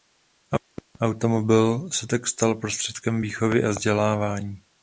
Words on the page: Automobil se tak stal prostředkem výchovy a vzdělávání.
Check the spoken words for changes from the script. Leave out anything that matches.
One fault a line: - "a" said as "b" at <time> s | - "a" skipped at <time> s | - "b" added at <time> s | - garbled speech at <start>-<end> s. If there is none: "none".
none